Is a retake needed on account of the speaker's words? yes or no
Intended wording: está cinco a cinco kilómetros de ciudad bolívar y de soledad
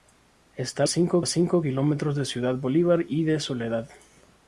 no